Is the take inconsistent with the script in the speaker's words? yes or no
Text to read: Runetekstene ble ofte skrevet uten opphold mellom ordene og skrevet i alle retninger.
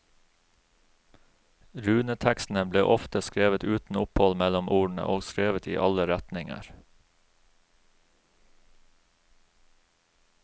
no